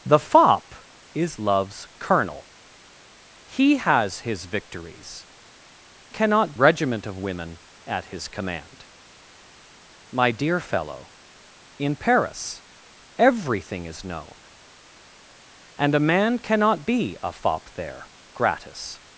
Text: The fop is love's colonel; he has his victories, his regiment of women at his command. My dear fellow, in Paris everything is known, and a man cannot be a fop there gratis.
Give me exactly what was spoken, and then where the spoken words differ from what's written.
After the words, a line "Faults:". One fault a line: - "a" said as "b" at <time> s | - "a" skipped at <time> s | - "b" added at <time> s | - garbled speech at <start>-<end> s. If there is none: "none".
The fop is love's colonel; he has his victories, cannot regiment of women at his command. My dear fellow, in Paris everything is known, and a man cannot be a fop there gratis.
Faults:
- "his" said as "cannot" at 6.1 s